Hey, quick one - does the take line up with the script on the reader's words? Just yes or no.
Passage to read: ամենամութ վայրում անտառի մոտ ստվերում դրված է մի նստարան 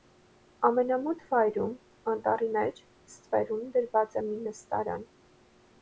no